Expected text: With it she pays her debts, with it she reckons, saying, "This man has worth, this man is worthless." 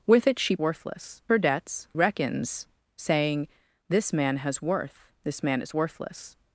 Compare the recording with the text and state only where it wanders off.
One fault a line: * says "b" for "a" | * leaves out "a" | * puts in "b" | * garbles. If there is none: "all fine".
* says "worthless" for "pays"
* leaves out "with it she"